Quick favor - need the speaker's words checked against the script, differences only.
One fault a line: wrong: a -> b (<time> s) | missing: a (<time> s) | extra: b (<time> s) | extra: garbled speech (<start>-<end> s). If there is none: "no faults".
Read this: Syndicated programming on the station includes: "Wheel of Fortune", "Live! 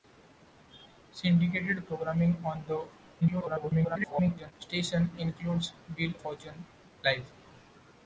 extra: garbled speech (3.2-4.5 s)
missing: of (6.1 s)